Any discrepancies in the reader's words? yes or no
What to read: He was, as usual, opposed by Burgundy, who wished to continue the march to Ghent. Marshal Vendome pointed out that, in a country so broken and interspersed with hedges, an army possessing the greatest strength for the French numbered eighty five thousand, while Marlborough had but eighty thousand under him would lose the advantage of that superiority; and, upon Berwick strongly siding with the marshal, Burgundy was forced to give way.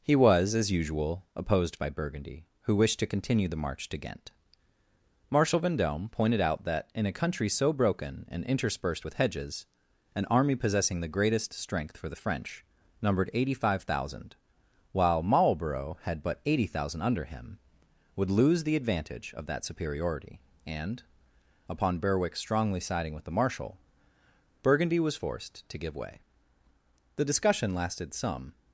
yes